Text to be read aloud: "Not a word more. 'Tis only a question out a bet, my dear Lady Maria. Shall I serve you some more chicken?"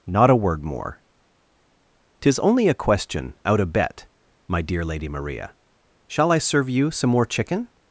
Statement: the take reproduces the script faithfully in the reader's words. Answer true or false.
true